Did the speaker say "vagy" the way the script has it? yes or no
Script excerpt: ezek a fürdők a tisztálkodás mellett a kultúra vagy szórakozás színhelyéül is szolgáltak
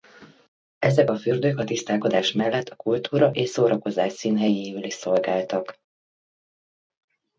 no